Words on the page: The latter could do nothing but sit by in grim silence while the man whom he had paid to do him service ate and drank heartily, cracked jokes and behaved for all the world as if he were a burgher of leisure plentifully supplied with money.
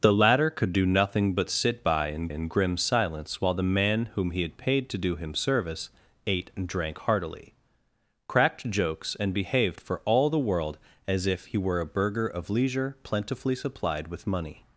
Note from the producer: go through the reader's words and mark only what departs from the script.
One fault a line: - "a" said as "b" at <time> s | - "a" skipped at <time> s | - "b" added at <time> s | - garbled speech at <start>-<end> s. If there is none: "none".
- "in" added at 2.3 s